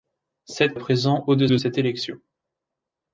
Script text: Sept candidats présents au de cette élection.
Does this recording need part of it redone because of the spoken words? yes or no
yes